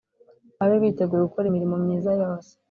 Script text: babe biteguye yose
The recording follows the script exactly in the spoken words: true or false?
false